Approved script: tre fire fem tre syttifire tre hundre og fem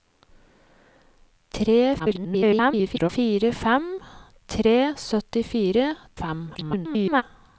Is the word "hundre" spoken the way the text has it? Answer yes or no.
no